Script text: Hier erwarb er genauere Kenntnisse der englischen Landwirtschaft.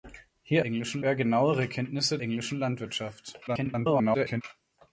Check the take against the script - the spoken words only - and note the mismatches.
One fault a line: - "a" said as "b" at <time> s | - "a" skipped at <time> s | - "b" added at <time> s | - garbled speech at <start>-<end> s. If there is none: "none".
- "erwarb" said as "englischen" at 0.6 s
- "der" skipped at 2.2 s
- garbled speech at 3.5-4.4 s